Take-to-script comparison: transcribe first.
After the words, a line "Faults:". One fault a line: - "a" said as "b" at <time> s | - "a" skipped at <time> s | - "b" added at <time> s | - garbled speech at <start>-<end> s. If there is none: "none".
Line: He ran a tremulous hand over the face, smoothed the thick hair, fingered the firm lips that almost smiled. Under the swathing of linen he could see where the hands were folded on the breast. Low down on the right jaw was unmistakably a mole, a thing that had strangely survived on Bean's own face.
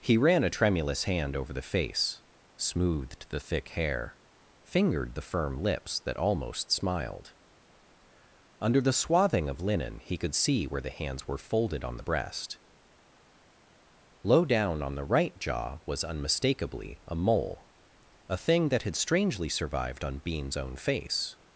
He ran a tremulous hand over the face, smoothed the thick hair, fingered the firm lips that almost smiled. Under the swathing of linen he could see where the hands were folded on the breast. Low down on the right jaw was unmistakably a mole, a thing that had strangely survived on Bean's own face.
Faults:
none